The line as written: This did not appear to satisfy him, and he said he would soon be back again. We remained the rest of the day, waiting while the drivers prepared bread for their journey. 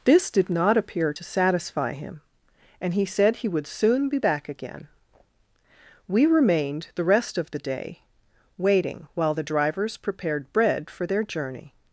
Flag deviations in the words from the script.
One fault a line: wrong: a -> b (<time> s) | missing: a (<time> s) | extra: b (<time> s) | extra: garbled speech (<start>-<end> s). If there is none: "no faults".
no faults